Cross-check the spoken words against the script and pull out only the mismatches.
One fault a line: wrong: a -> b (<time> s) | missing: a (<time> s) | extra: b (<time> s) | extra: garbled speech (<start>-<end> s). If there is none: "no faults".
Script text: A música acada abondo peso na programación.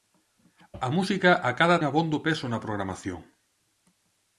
no faults